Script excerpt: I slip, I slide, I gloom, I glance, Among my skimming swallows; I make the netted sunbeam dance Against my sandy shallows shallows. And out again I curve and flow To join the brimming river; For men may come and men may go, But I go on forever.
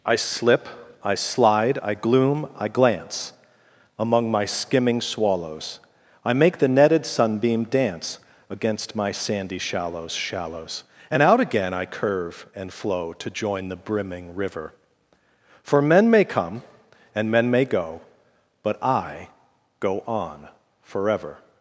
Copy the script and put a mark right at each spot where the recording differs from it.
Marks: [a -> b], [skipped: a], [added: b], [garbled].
I slip, I slide, I gloom, I glance, Among my skimming swallows; I make the netted sunbeam dance Against my sandy shallows shallows. And out again I curve and flow To join the brimming river; For men may come and men may go, But I go on forever.